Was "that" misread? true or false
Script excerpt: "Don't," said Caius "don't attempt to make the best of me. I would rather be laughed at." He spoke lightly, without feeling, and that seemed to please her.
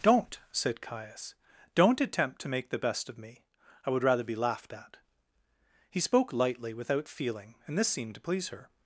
true